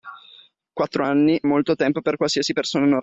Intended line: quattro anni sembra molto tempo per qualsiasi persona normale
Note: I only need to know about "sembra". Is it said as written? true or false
false